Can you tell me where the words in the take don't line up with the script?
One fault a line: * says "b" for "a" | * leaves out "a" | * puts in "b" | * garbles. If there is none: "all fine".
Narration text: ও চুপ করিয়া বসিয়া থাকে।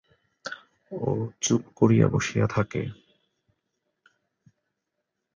all fine